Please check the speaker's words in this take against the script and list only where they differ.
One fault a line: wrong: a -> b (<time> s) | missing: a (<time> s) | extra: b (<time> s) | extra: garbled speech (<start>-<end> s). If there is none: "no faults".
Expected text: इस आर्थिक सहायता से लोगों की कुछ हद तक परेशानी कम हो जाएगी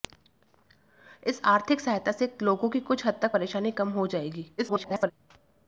extra: garbled speech (4.6-5.1 s)